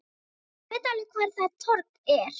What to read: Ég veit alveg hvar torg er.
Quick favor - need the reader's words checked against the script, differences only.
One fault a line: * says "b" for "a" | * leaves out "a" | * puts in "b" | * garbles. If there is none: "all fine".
* puts in "það"